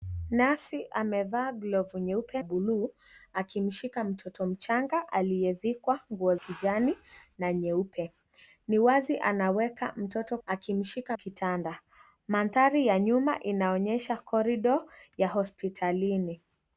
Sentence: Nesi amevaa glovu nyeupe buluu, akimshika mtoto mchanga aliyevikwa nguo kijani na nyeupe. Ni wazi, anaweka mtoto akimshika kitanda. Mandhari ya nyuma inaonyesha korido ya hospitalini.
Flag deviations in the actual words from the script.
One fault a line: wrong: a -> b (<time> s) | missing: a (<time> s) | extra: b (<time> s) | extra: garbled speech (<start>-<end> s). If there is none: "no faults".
no faults